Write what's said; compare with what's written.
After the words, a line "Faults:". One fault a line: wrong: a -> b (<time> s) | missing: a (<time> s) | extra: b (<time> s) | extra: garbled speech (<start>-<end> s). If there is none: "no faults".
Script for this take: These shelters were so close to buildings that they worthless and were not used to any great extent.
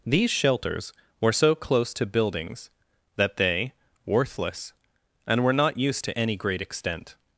These shelters were so close to buildings that they worthless and were not used to any great extent.
Faults:
no faults